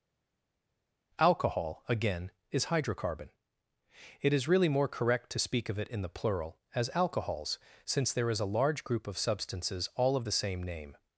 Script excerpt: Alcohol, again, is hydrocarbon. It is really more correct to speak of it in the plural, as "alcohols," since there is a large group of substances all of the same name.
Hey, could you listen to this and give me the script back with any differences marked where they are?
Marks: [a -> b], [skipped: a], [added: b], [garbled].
Alcohol, again, is hydrocarbon. It is really more correct to speak of it in the plural, as "alcohols," since there is a large group of substances all of the same name.